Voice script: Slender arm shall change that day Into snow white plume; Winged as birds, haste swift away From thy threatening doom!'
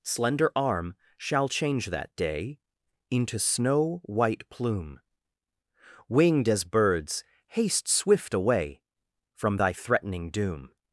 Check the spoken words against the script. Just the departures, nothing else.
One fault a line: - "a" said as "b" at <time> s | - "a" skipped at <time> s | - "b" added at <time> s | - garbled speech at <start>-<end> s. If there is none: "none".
none